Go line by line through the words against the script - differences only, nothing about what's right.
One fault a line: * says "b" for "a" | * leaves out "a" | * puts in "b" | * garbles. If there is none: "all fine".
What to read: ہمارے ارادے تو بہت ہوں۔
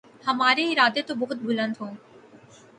* puts in "بلند"